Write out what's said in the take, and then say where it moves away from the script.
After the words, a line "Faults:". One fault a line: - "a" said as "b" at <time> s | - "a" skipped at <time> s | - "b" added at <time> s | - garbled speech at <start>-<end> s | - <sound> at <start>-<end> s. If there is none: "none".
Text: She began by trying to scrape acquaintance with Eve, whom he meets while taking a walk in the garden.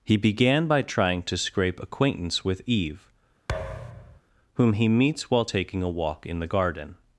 He began by trying to scrape acquaintance with Eve, whom he meets while taking a walk in the garden.
Faults:
- "She" said as "He" at 0.0 s
- thud at 3.5-4.2 s